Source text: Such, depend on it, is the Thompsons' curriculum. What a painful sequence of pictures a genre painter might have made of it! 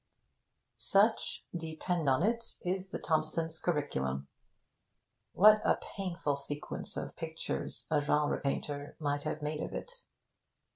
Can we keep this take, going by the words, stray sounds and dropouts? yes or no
yes